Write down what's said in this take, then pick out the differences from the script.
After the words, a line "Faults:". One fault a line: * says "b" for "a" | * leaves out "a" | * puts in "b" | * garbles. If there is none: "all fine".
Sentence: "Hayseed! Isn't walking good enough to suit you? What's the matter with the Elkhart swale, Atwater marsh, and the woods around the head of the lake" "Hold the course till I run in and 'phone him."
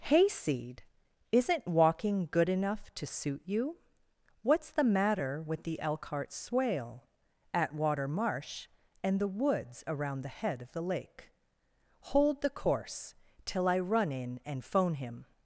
"Hayseed! Isn't walking good enough to suit you? What's the matter with the Elkhart swale, Atwater marsh, and the woods around the head of the lake" "Hold the course till I run in and 'phone him."
Faults:
all fine